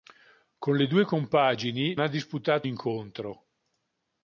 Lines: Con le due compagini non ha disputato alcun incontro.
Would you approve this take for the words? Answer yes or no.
no